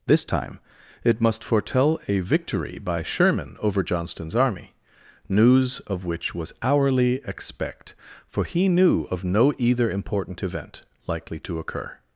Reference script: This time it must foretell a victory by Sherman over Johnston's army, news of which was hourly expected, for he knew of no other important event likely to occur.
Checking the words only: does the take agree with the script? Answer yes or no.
no